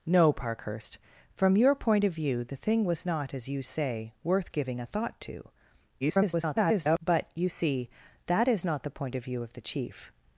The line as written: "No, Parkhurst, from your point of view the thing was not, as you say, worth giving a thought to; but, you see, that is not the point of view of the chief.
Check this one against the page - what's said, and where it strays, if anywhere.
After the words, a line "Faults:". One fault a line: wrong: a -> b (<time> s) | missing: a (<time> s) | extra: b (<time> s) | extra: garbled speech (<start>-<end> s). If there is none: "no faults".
"No, Parkhurst, from your point of view the thing was not, as you say, worth giving a thought to; [garbled] but, you see, that is not the point of view of the chief.
Faults:
extra: garbled speech (6.0-7.0 s)